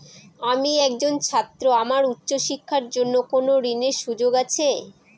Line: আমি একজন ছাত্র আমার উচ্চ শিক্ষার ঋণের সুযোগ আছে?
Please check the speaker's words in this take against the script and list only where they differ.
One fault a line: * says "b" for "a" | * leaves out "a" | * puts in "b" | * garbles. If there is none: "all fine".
* puts in "জন্য কোন"